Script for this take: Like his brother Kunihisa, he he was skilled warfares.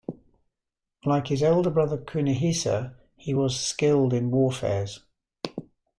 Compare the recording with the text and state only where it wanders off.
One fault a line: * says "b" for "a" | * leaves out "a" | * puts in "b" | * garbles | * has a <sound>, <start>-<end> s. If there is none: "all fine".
* puts in "elder"
* leaves out "he"
* puts in "in"